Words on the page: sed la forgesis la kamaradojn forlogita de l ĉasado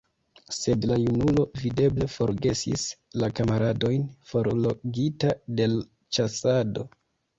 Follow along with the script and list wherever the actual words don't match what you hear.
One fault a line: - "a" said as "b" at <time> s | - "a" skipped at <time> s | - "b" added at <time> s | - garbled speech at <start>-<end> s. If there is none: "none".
- "junulo videble" added at 1.0 s